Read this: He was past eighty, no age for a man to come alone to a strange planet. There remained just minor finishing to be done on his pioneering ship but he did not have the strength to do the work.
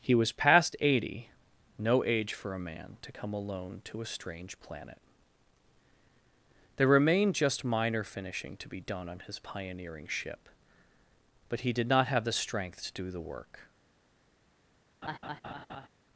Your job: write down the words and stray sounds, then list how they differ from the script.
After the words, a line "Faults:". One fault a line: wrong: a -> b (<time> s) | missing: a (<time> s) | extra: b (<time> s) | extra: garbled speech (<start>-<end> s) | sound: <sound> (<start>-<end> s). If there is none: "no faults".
He was past eighty, no age for a man to come alone to a strange planet. There remained just minor finishing to be done on his pioneering ship but he did not have the strength to do the work.
Faults:
sound: laugh (15.0-15.9 s)